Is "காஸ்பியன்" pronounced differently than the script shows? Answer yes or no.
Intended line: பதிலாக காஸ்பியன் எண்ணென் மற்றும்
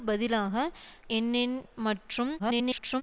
yes